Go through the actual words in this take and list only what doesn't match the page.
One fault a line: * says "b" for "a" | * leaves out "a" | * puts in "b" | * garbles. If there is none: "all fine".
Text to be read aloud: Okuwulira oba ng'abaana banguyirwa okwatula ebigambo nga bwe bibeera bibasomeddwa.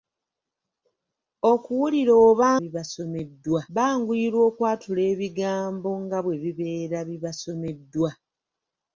* says "bibasomeddwa" for "ng'abaana"